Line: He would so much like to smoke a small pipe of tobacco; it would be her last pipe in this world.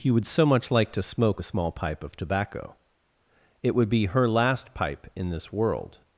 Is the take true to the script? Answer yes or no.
yes